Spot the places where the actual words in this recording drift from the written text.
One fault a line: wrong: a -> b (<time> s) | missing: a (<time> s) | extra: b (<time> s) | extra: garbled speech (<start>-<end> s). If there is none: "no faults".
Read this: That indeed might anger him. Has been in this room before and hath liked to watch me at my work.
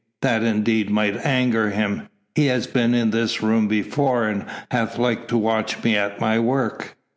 extra: He (2.3 s)